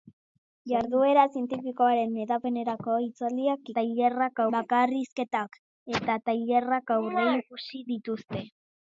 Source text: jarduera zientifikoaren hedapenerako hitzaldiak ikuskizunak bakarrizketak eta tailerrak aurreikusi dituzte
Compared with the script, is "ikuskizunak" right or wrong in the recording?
wrong